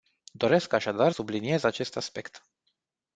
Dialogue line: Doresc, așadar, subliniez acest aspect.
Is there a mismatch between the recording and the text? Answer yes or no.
no